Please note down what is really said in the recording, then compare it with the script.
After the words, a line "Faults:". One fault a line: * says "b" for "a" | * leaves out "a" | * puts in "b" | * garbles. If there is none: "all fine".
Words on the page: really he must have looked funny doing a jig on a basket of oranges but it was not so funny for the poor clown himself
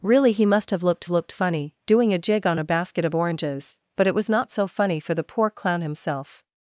really he must have looked looked funny doing a jig on a basket of oranges but it was not so funny for the poor clown himself
Faults:
* puts in "looked"